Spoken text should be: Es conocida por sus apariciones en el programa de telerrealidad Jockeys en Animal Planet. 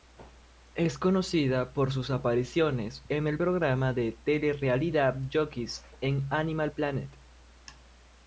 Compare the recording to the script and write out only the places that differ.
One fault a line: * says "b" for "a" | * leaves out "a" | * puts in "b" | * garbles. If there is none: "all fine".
all fine